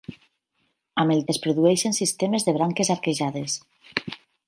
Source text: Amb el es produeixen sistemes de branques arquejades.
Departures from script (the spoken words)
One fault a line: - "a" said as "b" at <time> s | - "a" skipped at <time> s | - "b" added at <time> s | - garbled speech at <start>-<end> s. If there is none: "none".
none